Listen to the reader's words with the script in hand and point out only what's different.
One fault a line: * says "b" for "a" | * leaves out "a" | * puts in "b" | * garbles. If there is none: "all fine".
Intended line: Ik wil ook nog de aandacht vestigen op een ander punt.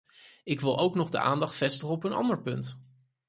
all fine